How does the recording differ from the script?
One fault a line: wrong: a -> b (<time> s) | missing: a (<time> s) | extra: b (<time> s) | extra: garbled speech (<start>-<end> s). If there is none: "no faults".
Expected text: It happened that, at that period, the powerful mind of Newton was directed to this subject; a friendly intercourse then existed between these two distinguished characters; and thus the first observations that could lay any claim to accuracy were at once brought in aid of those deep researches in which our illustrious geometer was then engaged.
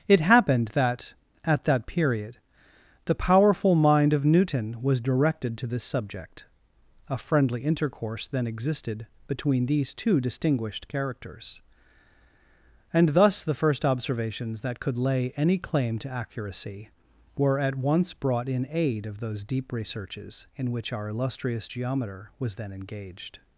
no faults